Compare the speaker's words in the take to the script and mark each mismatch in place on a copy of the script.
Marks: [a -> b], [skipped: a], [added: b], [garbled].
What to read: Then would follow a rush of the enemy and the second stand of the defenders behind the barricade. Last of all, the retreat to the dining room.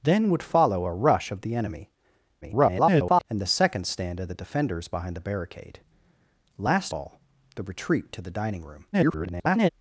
Then would follow a rush of the enemy [garbled] and the second stand of the defenders behind the barricade. Last [skipped: of] all, the retreat to the dining room. [garbled]